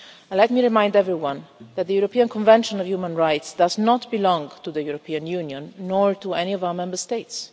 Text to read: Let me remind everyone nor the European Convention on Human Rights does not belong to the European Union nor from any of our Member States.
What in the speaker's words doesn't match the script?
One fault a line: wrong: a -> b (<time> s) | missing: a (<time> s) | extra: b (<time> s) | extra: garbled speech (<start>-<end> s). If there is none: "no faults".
wrong: nor -> that (1.7 s)
wrong: from -> to (6.1 s)